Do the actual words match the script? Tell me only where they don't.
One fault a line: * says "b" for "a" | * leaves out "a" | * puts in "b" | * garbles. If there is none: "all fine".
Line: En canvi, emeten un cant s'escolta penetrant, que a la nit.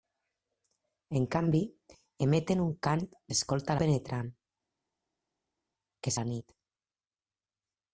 all fine